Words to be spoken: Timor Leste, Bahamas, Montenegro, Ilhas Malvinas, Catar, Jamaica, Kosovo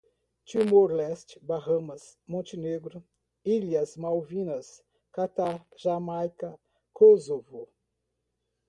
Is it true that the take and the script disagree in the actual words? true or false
false